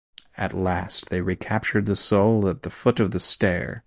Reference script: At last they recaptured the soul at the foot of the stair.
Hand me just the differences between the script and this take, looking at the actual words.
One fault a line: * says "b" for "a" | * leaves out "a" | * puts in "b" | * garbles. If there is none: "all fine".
all fine